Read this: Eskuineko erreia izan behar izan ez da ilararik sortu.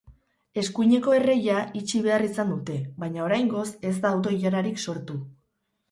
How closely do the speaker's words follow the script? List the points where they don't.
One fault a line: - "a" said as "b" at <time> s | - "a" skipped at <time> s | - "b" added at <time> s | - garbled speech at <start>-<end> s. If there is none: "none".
- "izan" said as "itxi" at 1.8 s
- "dute baina oraingoz" added at 2.6 s
- "auto" added at 4.2 s